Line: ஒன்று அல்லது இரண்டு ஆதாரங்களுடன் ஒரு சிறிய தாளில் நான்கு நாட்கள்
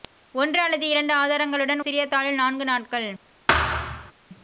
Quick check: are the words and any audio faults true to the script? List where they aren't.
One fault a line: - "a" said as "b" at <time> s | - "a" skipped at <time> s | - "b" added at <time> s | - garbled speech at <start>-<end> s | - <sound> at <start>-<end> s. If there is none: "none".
- "ஒரு" skipped at 1.9 s
- thud at 3.5-4.1 s